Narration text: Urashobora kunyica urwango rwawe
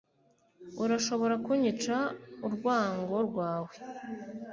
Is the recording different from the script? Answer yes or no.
no